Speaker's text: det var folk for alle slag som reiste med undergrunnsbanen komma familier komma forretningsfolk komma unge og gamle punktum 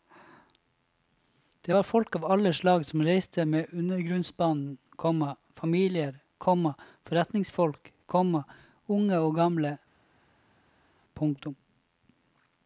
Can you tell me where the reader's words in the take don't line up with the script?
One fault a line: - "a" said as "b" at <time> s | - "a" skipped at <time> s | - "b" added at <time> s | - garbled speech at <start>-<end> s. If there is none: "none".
- "for" said as "av" at 2.1 s